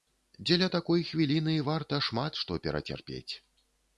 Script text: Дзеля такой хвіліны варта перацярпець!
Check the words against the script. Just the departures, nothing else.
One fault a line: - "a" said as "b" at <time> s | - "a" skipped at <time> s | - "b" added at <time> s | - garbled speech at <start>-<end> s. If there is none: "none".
- "шмат што" added at 2.1 s